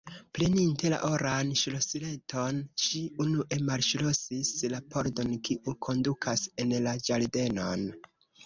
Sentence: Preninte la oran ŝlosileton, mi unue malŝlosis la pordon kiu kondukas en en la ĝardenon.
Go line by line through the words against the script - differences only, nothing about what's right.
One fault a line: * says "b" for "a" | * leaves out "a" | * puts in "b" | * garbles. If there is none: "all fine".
* says "ŝi" for "mi"
* leaves out "en"